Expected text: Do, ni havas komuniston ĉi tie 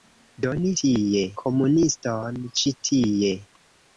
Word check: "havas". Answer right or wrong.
wrong